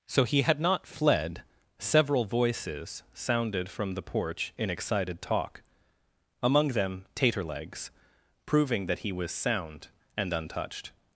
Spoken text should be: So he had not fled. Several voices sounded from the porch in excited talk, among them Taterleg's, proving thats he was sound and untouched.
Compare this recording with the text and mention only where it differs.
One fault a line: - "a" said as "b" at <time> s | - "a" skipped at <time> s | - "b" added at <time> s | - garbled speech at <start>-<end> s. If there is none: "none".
- "thats" said as "that" at 8.8 s